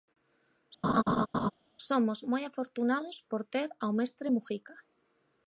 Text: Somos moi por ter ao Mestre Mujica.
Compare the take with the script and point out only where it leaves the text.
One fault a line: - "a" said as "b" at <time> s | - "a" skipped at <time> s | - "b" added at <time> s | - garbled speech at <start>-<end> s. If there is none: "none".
- "afortunados" added at 2.4 s